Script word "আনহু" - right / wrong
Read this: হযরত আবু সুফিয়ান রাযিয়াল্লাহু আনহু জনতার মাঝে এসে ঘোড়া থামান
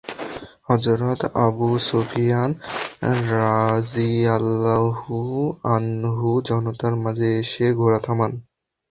right